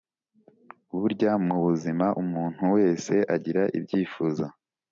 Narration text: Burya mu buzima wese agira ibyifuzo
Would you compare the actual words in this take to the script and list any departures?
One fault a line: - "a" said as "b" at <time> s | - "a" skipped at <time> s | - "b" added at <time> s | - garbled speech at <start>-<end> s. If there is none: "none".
- "umuntu" added at 2.2 s